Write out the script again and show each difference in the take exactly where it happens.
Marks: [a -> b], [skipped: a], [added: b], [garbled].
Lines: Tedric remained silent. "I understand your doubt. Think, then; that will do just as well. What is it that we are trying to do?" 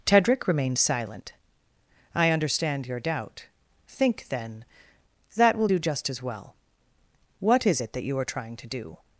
Tedric remained silent. "I understand your doubt. Think, then; that will do just as well. What is it that [we -> you] are trying to do?"